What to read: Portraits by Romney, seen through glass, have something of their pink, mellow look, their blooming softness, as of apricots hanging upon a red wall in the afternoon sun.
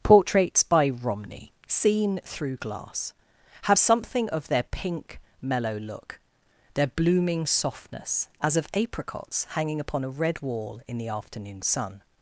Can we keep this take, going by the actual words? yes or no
yes